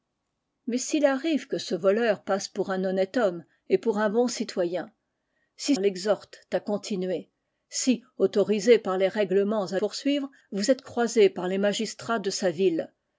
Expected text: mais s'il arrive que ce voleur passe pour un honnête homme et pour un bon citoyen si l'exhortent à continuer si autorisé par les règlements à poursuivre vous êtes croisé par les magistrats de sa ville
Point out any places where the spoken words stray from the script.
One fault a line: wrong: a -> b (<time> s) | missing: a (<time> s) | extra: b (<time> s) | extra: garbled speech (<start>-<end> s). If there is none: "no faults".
no faults